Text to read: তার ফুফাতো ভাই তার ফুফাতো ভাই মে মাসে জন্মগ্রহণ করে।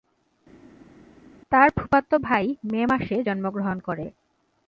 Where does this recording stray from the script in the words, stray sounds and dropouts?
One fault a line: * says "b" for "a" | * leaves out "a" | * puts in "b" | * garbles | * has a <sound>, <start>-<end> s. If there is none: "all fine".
* leaves out "তার ফুফাতো ভাই"